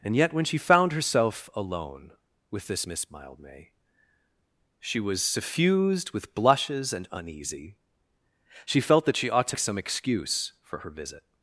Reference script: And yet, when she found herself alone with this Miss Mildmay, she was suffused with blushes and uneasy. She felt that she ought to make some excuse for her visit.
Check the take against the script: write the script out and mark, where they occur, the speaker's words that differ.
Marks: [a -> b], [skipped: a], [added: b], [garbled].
And yet, when she found herself alone with this Miss Mildmay, she was suffused with blushes and uneasy. She felt that she ought to [skipped: make] some excuse for her visit.